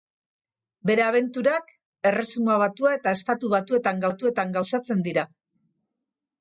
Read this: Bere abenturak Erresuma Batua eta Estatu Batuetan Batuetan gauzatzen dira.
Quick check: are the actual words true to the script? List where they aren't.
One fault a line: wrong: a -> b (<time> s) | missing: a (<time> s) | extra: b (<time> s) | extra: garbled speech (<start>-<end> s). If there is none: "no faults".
no faults